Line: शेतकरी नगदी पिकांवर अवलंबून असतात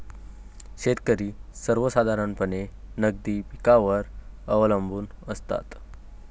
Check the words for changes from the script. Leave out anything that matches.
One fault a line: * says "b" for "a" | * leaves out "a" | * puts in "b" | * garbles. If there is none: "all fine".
* puts in "सर्वसाधारणपणे"